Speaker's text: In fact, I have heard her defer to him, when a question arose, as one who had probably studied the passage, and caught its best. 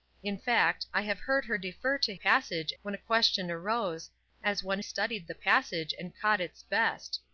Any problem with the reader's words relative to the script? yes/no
yes